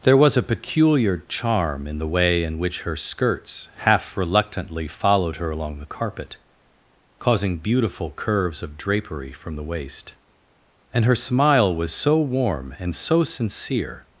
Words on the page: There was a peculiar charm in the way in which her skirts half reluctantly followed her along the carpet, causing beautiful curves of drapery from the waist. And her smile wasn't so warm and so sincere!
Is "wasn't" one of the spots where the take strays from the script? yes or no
yes